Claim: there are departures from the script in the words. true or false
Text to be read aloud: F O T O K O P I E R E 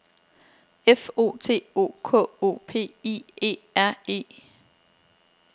false